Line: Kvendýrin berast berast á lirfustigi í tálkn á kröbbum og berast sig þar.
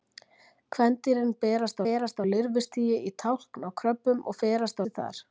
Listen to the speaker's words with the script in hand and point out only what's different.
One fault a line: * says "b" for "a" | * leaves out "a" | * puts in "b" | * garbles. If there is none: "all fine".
all fine